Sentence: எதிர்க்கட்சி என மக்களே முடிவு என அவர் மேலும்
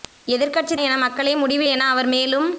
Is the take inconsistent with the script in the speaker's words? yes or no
no